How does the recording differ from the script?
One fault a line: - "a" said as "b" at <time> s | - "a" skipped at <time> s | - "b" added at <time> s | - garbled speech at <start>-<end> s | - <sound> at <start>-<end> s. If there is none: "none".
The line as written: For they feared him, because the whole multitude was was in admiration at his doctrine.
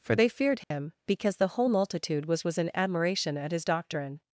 - dropout at 0.6-0.7 s